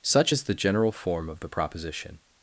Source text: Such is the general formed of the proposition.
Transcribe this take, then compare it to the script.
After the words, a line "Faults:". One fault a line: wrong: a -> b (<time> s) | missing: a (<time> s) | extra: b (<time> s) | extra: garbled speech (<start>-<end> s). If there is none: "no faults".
Such is the general form of the proposition.
Faults:
wrong: formed -> form (0.9 s)